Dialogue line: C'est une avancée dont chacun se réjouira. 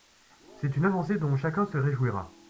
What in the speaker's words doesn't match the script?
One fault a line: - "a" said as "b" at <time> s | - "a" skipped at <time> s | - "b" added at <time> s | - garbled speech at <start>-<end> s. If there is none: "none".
none